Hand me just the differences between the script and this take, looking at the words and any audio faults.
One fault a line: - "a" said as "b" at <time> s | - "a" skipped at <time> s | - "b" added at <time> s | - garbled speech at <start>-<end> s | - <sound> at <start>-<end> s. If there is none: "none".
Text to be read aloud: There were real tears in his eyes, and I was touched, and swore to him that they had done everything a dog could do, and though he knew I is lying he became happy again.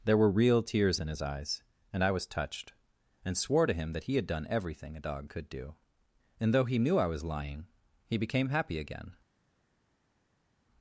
- "they" said as "he" at 4.0 s
- "is" said as "was" at 7.1 s